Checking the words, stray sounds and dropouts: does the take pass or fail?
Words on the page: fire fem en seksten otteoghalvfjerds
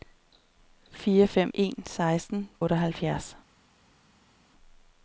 pass